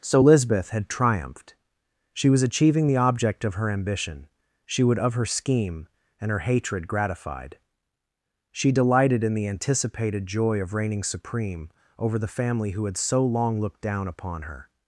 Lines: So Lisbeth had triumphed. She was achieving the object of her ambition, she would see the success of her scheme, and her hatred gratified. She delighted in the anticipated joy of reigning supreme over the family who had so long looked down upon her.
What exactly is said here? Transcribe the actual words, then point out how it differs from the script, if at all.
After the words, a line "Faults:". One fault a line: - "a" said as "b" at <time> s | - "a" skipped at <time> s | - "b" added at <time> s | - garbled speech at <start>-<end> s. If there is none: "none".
So Lisbeth had triumphed. She was achieving the object of her ambition, she would of her scheme, and her hatred gratified. She delighted in the anticipated joy of reigning supreme over the family who had so long looked down upon her.
Faults:
- "see the success" skipped at 5.0 s